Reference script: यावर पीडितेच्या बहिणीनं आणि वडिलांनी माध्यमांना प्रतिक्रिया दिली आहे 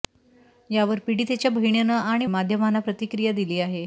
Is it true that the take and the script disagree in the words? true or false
true